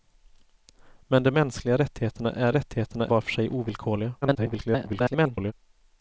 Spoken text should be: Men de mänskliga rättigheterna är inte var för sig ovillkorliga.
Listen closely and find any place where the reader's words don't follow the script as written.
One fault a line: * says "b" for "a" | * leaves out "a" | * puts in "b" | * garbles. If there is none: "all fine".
* says "rättigheterna" for "inte"
* garbles